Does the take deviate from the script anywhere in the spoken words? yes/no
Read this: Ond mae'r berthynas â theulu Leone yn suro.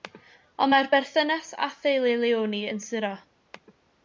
no